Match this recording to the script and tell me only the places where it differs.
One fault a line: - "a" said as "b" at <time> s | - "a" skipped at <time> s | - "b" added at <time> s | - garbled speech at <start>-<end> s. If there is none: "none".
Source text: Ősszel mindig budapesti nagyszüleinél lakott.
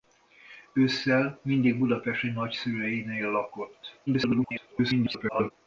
- garbled speech at 4.1-5.5 s